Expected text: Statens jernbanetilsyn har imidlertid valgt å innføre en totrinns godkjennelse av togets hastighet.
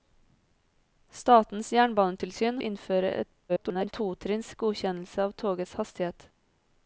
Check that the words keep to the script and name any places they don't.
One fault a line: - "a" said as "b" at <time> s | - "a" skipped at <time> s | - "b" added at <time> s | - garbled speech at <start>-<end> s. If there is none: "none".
- "har imidlertid valgt" skipped at 2.6 s
- garbled speech at 3.5-3.9 s